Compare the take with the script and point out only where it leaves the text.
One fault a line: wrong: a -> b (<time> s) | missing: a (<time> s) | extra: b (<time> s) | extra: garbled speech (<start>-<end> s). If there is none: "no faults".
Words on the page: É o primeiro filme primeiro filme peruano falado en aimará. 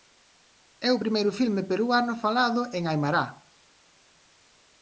missing: primeiro filme (1.6 s)